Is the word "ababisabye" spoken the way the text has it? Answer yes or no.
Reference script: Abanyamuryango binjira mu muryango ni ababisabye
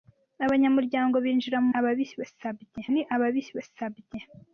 yes